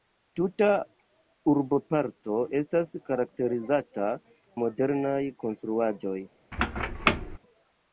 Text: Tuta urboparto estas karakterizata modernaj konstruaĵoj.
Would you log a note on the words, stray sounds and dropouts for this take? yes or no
yes